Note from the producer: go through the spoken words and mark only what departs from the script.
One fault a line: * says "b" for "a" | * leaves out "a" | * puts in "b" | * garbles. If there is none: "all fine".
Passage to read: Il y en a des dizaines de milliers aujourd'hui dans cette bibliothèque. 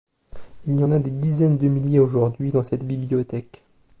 all fine